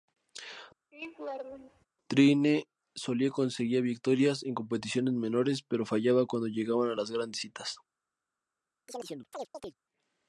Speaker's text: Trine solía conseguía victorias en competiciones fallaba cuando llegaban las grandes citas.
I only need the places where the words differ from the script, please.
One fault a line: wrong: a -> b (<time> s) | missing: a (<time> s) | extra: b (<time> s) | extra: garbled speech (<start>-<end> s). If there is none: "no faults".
extra: menores pero (5.1 s)